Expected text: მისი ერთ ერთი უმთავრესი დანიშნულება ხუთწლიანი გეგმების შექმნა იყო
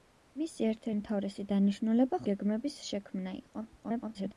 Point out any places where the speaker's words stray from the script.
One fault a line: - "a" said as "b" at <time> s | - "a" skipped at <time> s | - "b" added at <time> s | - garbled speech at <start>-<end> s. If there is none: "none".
- "ერთი" skipped at 0.9 s
- "ხუთწლიანი" skipped at 2.2 s
- garbled speech at 3.8-4.3 s